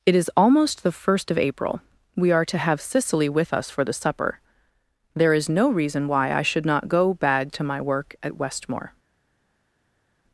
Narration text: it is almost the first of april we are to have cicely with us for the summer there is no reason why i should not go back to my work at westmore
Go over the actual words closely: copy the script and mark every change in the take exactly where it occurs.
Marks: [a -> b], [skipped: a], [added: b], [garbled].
it is almost the first of april we are to have cicely with us for the [summer -> supper] there is no reason why i should not go [back -> bag] to my work at westmore